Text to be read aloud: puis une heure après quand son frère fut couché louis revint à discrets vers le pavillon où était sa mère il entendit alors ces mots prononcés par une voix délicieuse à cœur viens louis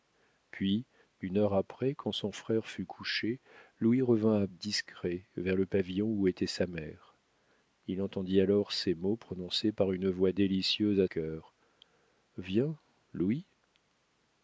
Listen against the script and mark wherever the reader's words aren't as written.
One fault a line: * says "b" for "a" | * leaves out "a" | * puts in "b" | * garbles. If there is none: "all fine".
all fine